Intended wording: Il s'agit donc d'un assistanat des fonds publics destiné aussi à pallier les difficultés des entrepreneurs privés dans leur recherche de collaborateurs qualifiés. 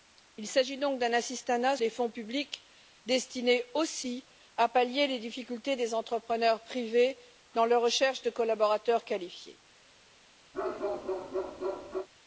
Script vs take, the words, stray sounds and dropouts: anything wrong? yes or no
yes